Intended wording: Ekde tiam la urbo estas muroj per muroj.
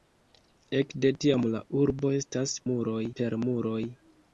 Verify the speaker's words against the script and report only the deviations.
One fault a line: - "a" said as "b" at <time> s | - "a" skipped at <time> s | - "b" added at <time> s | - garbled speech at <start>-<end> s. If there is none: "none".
none